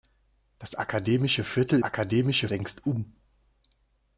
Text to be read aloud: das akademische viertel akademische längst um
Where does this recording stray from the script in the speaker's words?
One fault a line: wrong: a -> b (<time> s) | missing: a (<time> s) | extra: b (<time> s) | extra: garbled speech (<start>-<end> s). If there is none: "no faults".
no faults